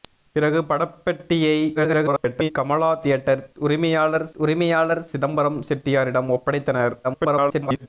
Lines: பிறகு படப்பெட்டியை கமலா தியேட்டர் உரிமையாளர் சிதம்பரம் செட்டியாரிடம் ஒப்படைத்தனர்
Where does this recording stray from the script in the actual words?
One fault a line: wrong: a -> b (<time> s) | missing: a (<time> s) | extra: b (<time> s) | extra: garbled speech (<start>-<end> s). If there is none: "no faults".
extra: garbled speech (1.7-2.5 s)
extra: உரிமையாளர் (4.4 s)
extra: garbled speech (7.0-7.9 s)